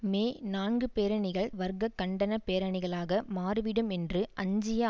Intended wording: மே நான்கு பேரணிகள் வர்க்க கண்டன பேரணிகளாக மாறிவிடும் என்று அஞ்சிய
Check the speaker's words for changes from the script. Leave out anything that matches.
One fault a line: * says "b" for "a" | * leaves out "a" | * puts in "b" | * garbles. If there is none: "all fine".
all fine